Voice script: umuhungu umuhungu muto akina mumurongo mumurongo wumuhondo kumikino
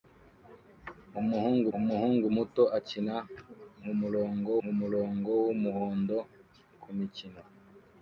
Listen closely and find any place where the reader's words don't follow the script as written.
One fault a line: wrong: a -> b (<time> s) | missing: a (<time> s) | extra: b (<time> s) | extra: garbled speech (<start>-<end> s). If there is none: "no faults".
no faults